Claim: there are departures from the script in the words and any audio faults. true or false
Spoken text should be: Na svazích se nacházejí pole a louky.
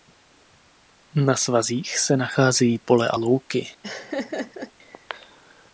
true